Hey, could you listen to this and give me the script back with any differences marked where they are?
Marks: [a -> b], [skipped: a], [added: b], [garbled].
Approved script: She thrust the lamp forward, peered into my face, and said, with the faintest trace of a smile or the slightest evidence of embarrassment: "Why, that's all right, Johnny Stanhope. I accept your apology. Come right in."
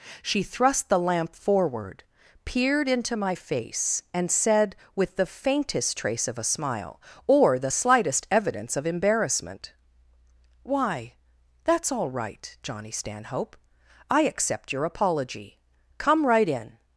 She thrust the lamp forward, peered into my face, and said, with the faintest trace of a smile or the slightest evidence of embarrassment: "Why, that's all right, Johnny Stanhope. I accept your apology. Come right in."